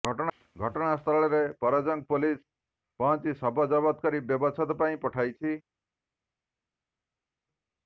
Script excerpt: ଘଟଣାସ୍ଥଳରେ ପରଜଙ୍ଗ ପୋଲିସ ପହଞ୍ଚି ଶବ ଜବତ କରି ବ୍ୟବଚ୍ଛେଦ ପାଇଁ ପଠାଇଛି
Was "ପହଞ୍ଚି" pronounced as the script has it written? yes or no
yes